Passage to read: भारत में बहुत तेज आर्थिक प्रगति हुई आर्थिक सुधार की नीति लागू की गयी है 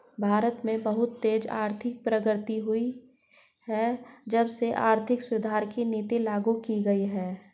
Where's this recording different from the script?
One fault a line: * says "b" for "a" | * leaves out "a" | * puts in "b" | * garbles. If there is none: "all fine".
* puts in "है जब से"